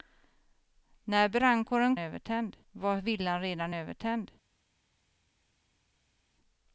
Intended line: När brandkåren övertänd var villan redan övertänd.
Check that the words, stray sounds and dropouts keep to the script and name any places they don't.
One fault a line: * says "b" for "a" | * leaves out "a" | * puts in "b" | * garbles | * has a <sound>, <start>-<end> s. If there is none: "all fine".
all fine